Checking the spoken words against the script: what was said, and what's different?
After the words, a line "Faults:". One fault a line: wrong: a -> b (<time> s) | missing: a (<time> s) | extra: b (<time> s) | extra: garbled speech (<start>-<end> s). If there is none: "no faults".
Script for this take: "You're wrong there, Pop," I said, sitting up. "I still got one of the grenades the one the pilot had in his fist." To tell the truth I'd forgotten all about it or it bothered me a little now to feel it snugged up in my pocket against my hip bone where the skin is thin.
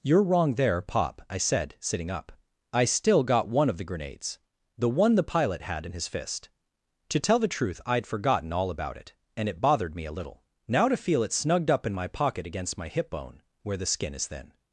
"You're wrong there, Pop," I said, sitting up. "I still got one of the grenades the one the pilot had in his fist." To tell the truth I'd forgotten all about it and it bothered me a little now to feel it snugged up in my pocket against my hip bone where the skin is thin.
Faults:
wrong: or -> and (9.4 s)